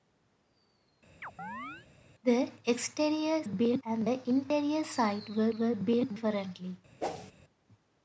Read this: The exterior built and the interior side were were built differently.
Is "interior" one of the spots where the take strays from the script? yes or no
no